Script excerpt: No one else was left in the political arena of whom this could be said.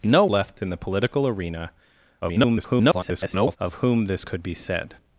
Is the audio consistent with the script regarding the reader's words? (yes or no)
no